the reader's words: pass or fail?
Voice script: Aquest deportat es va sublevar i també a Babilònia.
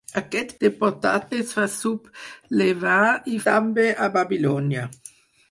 pass